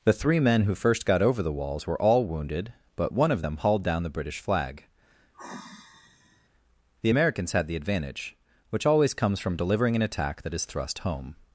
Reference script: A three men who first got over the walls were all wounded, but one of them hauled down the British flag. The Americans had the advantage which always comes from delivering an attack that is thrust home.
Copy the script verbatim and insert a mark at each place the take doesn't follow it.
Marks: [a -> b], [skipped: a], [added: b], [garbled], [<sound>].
[A -> The] three men who first got over the walls were all wounded, but one of them hauled down the British flag. [sigh] The Americans had the advantage which always comes from delivering an attack that is thrust home.